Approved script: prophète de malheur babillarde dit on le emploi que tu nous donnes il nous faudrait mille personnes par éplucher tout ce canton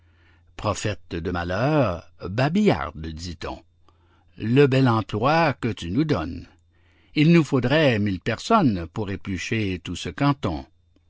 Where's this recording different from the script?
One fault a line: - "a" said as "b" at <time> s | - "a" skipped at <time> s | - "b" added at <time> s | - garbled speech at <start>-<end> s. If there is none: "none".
- "bel" added at 4.6 s
- "par" said as "pour" at 8.9 s